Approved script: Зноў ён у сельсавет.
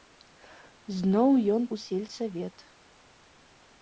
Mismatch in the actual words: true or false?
false